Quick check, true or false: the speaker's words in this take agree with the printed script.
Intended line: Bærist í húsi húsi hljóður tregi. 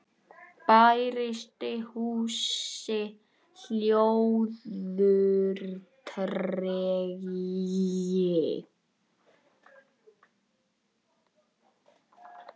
false